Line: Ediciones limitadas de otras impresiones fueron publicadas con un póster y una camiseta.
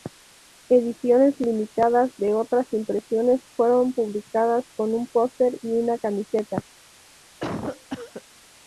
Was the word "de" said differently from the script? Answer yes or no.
no